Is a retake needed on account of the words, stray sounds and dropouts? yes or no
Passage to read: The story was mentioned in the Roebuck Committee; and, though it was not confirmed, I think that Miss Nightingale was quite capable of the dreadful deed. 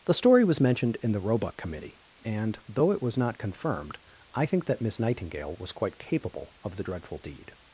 no